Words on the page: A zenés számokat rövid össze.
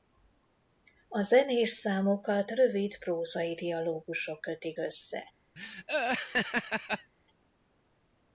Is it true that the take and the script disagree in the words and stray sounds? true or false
true